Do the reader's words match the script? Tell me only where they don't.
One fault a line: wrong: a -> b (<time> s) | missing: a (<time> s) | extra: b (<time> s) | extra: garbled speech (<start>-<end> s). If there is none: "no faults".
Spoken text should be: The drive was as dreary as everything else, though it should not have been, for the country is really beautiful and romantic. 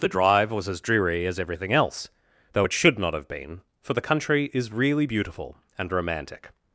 no faults